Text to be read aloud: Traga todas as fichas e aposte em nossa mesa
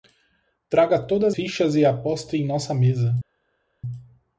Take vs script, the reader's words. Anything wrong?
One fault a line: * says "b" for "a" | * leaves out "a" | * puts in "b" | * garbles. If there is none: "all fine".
* leaves out "as"